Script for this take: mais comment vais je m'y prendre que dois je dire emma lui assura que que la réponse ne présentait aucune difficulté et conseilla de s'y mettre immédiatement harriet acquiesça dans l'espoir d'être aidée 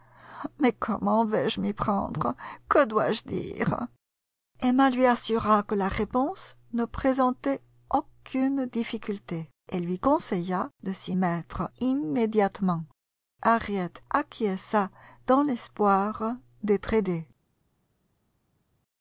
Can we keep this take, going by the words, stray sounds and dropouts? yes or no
no